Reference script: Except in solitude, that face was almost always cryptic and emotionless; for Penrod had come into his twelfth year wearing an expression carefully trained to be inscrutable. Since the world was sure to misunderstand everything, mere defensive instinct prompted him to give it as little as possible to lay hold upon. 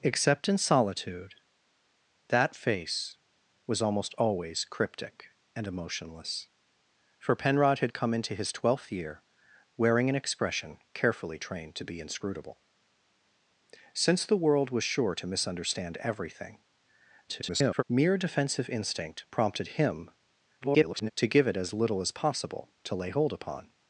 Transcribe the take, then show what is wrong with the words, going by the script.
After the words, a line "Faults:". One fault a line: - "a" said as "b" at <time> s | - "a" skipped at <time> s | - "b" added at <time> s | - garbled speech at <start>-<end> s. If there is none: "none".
Except in solitude, that face was almost always cryptic and emotionless; for Penrod had come into his twelfth year wearing an expression carefully trained to be inscrutable. Since the world was sure to misunderstand everything, [garbled] mere defensive instinct prompted him [garbled] to give it as little as possible to lay hold upon.
Faults:
- garbled speech at 17.3-17.8 s
- garbled speech at 20.6-21.1 s